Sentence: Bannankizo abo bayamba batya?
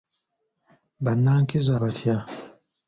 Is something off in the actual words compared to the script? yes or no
yes